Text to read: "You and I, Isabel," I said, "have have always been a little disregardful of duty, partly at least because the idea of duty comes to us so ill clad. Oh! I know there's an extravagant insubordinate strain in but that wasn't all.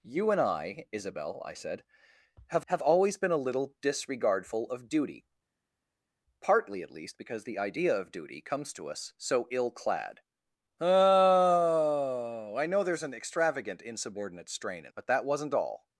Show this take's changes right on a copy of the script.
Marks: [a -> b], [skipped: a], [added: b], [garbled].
"You and I, Isabel," I said, "have have always been a little disregardful of duty, partly at least because the idea of duty comes to us so ill clad. Oh! I know there's an extravagant insubordinate strain in but that wasn't all.